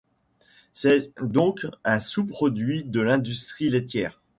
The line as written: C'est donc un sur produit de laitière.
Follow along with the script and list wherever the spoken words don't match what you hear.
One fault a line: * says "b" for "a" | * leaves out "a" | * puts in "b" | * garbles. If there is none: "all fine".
* says "sous" for "sur"
* puts in "l'industrie"